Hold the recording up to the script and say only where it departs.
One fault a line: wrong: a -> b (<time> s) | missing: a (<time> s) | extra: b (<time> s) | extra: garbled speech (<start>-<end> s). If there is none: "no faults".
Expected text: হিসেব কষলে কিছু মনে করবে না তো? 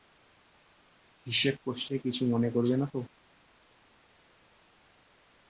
no faults